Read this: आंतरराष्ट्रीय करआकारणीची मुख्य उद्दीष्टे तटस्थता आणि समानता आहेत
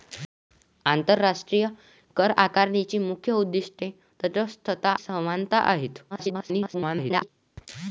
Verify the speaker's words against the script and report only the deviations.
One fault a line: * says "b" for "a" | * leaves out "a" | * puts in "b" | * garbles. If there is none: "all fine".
* leaves out "आणि"
* garbles